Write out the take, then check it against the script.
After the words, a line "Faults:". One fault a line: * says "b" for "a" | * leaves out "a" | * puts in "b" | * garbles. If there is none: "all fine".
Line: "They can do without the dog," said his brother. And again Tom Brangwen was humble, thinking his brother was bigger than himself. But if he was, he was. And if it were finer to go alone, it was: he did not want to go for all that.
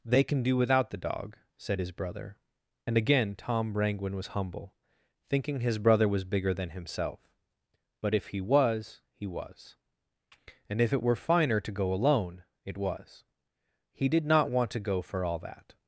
"They can do without the dog," said his brother. And again Tom Brangwen was humble, thinking his brother was bigger than himself. But if he was, he was. And if it were finer to go alone, it was: he did not want to go for all that.
Faults:
all fine